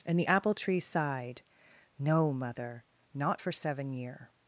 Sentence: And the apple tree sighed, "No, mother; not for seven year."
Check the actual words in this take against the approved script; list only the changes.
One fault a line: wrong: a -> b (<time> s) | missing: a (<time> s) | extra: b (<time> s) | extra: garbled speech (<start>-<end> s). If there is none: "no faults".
no faults